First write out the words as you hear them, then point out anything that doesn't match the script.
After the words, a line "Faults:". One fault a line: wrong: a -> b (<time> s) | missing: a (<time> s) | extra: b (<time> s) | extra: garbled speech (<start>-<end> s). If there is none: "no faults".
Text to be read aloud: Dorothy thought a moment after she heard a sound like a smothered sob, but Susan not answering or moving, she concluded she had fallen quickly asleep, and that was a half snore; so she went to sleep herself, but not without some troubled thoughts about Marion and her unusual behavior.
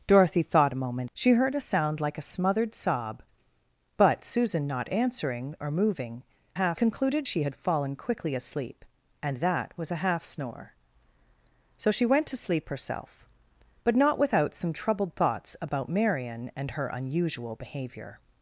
Dorothy thought a moment she heard a sound like a smothered sob, but Susan not answering or moving, half concluded she had fallen quickly asleep, and that was a half snore; so she went to sleep herself, but not without some troubled thoughts about Marion and her unusual behavior.
Faults:
missing: after (1.1 s)
wrong: she -> half (6.5 s)